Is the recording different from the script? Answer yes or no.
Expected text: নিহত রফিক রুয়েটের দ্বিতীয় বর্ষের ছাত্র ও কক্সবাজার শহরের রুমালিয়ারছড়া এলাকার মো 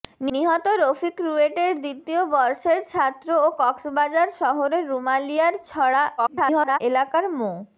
yes